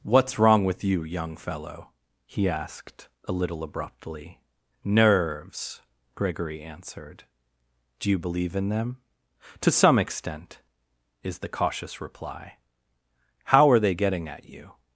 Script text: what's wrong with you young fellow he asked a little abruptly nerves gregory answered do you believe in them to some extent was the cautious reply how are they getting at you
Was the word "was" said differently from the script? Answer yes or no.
yes